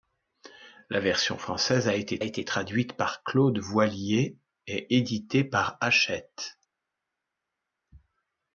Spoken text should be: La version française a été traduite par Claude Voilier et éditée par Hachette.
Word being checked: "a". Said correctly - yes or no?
yes